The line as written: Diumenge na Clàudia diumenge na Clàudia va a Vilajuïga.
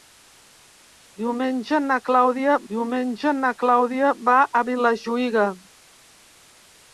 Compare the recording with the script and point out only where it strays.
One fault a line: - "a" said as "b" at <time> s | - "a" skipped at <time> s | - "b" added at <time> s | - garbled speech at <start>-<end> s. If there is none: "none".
none